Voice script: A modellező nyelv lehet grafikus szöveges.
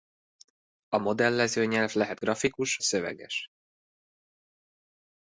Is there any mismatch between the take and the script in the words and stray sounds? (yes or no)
no